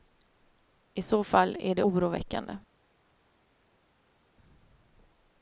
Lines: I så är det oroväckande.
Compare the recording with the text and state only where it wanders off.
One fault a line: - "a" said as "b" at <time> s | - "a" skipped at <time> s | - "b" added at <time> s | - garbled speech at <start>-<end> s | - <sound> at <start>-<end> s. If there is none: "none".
- "fall" added at 1.2 s